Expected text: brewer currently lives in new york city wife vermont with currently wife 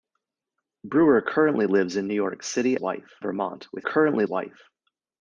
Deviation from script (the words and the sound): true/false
false